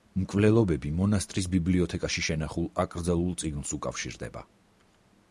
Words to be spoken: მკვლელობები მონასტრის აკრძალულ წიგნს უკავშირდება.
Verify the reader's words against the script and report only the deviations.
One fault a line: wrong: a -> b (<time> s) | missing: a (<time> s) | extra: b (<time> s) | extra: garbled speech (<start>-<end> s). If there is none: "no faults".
extra: ბიბლიოთეკაში შენახულ (1.6 s)